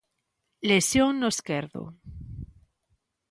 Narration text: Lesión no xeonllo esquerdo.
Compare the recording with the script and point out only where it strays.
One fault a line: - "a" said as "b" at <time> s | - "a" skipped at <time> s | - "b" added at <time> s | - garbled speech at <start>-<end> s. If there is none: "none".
- "xeonllo" skipped at 1.3 s